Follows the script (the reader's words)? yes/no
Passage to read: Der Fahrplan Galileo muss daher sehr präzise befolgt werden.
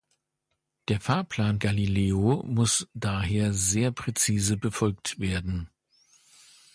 yes